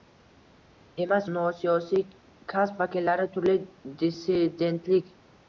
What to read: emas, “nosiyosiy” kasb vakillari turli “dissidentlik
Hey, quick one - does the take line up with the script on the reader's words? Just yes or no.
yes